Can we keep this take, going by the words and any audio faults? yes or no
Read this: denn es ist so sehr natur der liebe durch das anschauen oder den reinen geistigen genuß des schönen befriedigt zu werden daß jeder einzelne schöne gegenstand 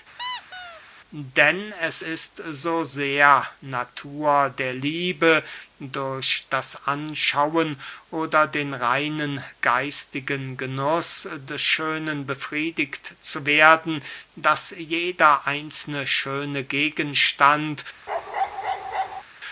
no